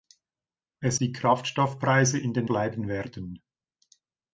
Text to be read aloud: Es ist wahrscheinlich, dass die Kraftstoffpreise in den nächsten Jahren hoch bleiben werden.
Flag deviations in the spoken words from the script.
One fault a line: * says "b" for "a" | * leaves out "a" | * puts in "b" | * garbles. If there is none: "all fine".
* leaves out "ist wahrscheinlich dass"
* leaves out "nächsten Jahren hoch"